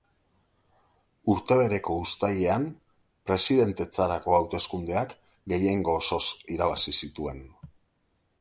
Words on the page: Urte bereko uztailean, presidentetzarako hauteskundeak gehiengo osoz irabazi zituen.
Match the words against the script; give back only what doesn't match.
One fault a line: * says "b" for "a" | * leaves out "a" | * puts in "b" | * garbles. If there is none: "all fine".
all fine